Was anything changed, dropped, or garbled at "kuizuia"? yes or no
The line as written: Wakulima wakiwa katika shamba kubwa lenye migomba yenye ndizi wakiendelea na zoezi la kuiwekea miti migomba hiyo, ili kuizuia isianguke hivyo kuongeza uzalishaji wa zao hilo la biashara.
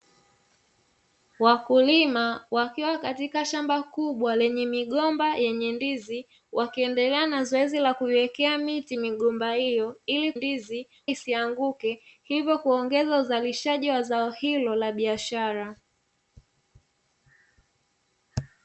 yes